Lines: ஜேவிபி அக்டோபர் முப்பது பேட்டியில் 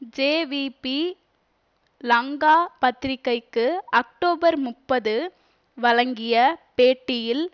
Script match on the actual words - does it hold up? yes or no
no